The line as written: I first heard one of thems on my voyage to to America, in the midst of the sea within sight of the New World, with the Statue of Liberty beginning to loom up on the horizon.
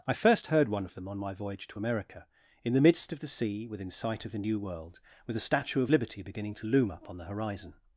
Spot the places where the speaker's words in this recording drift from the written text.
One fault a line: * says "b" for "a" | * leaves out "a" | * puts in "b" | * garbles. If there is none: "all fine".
* says "them" for "thems"
* leaves out "to"